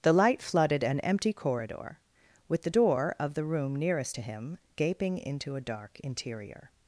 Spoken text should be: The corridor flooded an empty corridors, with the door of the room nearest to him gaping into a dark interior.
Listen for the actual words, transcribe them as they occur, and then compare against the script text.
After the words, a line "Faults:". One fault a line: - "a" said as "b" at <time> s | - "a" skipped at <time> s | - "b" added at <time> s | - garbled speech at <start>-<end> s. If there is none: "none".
The light flooded an empty corridor, with the door of the room nearest to him gaping into a dark interior.
Faults:
- "corridor" said as "light" at 0.1 s
- "corridors" said as "corridor" at 1.3 s